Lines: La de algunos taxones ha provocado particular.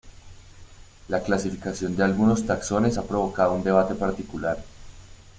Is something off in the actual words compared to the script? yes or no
yes